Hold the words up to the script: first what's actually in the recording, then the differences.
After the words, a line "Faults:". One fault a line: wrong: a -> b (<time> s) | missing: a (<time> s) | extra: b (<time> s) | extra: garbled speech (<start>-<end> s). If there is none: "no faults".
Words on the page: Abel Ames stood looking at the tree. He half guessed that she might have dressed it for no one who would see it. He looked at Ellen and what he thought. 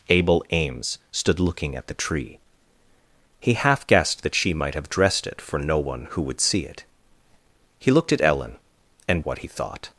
Abel Ames stood looking at the tree. He half guessed that she might have dressed it for no one who would see it. He looked at Ellen and what he thought.
Faults:
no faults